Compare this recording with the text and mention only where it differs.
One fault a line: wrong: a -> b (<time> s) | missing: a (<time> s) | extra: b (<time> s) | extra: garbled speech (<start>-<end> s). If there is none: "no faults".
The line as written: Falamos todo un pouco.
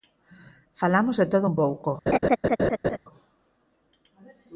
extra: de (1.2 s)